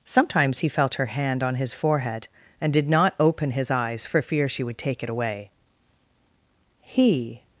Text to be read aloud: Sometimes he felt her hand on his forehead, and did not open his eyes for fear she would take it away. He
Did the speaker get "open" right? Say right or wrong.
right